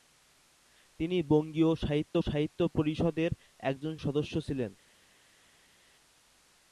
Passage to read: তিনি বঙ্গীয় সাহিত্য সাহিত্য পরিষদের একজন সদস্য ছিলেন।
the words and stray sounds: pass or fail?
pass